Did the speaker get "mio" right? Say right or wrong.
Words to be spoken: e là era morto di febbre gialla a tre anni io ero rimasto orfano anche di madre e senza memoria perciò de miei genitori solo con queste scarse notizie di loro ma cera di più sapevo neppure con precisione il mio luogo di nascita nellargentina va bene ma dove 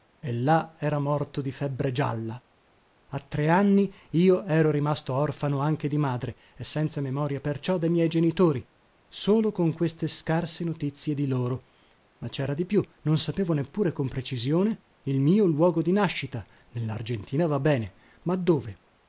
right